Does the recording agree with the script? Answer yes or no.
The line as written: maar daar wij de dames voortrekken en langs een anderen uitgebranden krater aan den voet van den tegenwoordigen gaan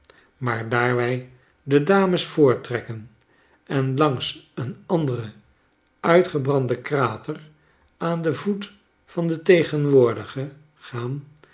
yes